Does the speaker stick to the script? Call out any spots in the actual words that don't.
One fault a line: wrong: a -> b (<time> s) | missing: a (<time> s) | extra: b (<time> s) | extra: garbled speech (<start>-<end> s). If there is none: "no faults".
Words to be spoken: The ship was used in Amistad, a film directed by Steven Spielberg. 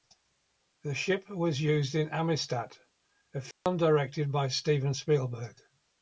no faults